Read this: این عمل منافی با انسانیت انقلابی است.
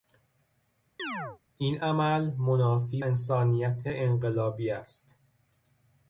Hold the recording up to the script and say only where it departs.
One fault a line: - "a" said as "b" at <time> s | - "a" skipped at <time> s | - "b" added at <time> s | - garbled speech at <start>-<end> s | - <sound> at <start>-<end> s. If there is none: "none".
- chirp at 1.0-1.4 s
- "با" skipped at 3.0 s